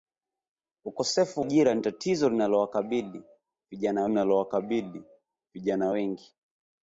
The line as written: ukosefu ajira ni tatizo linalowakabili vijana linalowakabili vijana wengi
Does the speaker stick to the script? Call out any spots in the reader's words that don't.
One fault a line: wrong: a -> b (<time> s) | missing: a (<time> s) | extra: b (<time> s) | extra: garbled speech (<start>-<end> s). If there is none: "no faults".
no faults